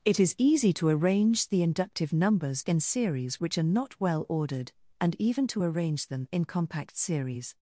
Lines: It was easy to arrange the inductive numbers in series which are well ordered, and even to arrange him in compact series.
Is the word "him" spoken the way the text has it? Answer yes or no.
no